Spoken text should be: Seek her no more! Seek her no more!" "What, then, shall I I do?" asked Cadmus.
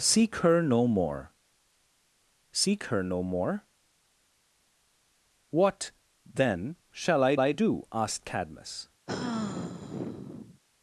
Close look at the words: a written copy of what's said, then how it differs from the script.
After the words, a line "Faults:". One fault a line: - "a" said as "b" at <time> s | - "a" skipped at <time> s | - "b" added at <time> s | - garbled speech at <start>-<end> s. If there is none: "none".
Seek her no more! Seek her no more!" "What, then, shall I I do?" asked Cadmus.
Faults:
none